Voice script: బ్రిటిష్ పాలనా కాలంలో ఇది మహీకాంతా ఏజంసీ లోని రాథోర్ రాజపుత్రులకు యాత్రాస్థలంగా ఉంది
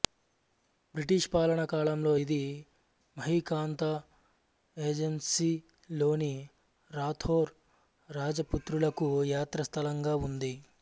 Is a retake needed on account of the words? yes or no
no